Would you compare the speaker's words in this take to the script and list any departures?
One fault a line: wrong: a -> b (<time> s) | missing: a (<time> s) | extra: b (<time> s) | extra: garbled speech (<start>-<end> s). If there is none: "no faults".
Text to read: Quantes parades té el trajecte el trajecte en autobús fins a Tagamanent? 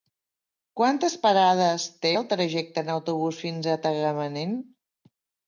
missing: el trajecte (2.9 s)